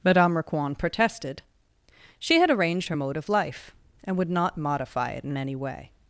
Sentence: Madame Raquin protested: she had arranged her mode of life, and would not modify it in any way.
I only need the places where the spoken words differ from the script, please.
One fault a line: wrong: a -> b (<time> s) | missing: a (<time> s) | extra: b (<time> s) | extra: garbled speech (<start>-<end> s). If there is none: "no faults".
no faults